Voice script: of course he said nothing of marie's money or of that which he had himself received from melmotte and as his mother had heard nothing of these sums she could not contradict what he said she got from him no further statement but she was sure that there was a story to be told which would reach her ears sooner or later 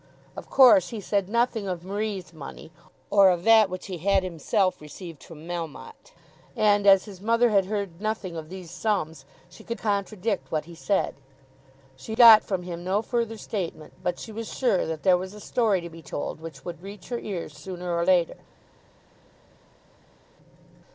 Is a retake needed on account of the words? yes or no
yes